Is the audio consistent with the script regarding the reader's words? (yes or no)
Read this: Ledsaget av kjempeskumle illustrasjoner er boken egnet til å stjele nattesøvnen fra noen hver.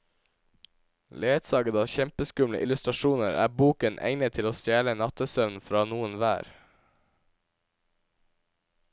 yes